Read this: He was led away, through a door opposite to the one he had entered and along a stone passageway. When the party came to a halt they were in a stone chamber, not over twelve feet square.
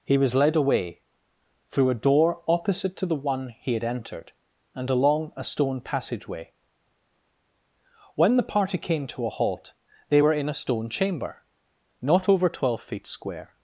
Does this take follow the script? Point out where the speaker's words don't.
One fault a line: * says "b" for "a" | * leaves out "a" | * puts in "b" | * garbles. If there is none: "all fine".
all fine